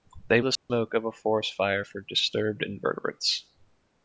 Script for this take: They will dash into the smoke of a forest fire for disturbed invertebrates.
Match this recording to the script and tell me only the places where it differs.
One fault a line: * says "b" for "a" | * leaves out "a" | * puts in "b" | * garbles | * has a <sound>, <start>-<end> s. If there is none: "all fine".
* leaves out "will dash into"
* has a dropout, 0.6-0.7 s